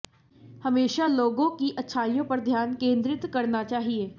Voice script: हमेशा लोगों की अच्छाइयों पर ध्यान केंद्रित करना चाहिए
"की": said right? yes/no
yes